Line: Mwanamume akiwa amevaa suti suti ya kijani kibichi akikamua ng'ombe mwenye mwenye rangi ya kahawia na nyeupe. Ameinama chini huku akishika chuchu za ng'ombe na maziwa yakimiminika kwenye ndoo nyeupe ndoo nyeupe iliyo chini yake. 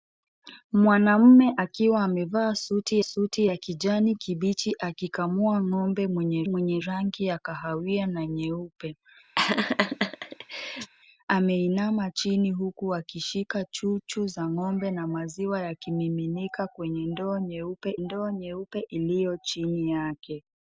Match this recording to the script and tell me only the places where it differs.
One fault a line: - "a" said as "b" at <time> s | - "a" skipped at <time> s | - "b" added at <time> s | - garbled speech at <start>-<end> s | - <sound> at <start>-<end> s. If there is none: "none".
- laugh at 9.4-10.9 s